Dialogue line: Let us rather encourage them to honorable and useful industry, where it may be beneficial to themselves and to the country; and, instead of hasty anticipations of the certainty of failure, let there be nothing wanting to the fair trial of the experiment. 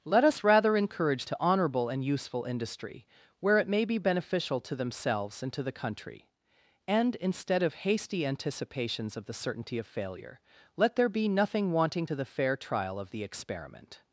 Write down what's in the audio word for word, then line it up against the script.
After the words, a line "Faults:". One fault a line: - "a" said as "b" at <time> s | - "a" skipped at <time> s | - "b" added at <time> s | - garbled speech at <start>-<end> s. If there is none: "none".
Let us rather encourage to honorable and useful industry, where it may be beneficial to themselves and to the country; and, instead of hasty anticipations of the certainty of failure, let there be nothing wanting to the fair trial of the experiment.
Faults:
- "them" skipped at 1.3 s